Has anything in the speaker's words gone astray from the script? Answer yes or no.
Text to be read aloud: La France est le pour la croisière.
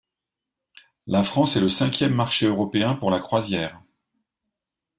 yes